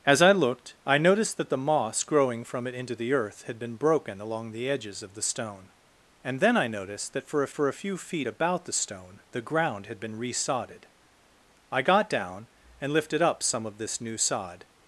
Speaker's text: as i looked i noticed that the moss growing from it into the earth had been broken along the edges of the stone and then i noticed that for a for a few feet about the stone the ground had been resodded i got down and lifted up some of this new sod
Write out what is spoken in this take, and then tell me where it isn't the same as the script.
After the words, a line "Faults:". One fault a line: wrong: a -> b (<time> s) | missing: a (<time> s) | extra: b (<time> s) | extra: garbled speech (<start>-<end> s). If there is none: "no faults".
as i looked i noticed that the moss growing from it into the earth had been broken along the edges of the stone and then i noticed that for a for a few feet about the stone the ground had been resodded i got down and lifted up some of this new sod
Faults:
no faults